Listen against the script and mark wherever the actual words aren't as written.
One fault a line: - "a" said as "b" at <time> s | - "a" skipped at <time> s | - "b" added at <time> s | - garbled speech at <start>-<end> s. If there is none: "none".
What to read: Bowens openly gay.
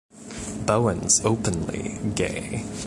none